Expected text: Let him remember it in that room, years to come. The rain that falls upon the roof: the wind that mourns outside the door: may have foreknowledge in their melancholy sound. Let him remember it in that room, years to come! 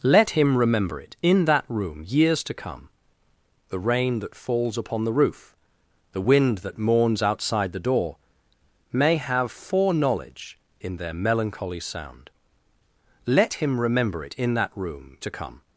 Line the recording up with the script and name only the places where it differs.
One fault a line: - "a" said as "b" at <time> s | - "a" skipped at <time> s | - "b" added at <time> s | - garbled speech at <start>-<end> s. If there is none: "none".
- "years" skipped at 15.2 s